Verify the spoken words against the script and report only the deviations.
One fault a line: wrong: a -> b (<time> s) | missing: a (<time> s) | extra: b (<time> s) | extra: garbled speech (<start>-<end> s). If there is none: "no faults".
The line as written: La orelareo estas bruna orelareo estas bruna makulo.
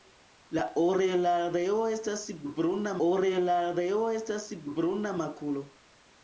no faults